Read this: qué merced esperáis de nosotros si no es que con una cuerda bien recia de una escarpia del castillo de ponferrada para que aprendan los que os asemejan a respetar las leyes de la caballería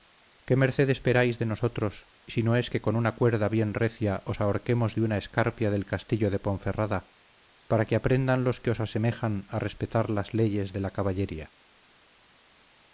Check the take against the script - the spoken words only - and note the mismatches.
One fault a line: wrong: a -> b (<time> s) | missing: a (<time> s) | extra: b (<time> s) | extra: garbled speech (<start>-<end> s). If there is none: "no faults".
extra: os ahorquemos (4.3 s)